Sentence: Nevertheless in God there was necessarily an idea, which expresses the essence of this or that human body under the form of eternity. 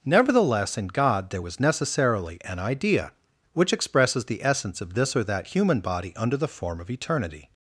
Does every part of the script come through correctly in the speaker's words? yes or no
yes